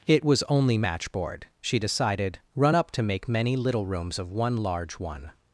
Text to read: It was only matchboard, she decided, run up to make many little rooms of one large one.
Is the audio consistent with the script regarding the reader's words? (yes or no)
yes